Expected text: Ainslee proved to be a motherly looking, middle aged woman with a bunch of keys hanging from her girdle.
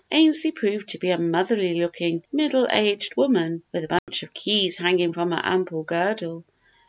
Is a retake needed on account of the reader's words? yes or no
yes